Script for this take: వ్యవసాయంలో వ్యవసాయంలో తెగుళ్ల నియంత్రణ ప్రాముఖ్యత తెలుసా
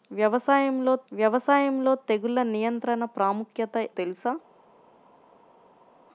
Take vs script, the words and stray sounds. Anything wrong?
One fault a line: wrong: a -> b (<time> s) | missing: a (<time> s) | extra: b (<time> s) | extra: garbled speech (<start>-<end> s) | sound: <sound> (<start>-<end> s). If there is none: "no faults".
no faults